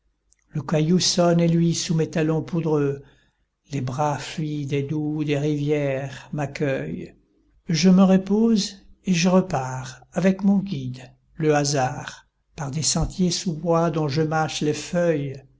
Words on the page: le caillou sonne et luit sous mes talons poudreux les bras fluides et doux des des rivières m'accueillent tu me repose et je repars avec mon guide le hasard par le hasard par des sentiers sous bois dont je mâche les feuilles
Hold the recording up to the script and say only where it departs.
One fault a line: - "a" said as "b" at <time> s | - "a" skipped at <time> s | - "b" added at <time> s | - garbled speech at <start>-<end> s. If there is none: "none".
- "des" skipped at 5.4 s
- "tu" said as "je" at 7.7 s
- "le hasard par" skipped at 12.7 s